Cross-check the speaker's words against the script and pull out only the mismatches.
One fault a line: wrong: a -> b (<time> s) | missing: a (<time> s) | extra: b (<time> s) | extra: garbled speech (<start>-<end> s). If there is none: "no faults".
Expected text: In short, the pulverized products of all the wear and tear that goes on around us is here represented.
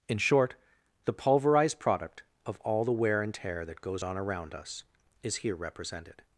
wrong: products -> product (1.8 s)